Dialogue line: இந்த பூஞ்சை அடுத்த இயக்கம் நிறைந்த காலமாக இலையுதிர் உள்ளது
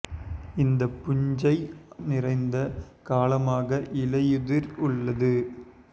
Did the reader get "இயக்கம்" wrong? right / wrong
wrong